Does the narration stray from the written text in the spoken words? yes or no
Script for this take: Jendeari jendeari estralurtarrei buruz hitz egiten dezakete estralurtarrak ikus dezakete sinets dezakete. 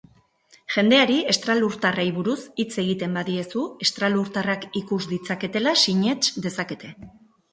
yes